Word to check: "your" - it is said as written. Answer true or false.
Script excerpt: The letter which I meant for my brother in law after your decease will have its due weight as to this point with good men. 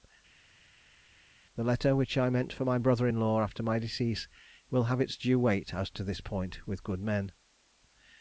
false